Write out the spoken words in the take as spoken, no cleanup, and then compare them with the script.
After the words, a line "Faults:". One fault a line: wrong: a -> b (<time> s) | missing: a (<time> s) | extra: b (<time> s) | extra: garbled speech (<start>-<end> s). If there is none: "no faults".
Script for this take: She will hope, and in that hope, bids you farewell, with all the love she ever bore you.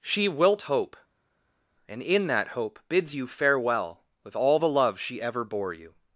She wilt hope, and in that hope, bids you farewell, with all the love she ever bore you.
Faults:
wrong: will -> wilt (0.3 s)